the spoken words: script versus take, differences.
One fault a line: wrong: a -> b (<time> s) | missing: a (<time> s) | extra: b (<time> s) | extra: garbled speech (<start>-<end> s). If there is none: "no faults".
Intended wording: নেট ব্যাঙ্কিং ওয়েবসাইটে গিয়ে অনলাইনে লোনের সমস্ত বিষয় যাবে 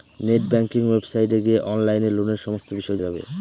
no faults